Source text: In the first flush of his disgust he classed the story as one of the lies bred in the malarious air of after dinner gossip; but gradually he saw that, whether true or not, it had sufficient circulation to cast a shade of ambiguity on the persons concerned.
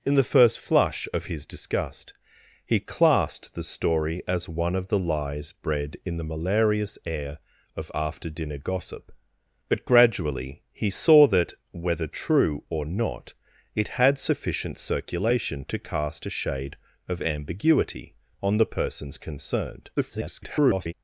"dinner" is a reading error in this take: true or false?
false